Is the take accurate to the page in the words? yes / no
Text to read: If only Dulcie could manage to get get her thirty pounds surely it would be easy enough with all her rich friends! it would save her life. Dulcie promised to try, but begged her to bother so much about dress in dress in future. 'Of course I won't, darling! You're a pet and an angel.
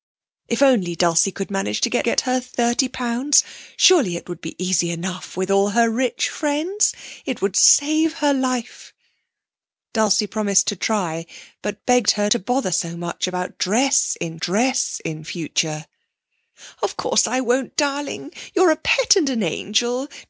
yes